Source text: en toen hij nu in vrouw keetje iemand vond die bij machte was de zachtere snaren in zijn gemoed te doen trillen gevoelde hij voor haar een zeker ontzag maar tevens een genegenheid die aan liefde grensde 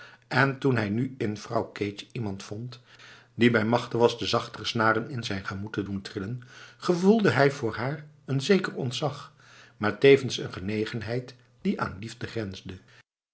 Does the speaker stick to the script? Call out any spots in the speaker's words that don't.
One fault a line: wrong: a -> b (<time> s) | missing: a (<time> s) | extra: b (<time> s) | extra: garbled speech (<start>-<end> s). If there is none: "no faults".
no faults